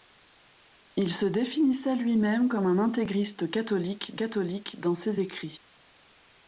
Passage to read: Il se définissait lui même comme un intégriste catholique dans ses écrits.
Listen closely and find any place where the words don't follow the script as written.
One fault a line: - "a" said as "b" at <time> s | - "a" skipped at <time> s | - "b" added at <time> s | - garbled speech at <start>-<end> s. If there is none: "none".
- "catholique" added at 4.2 s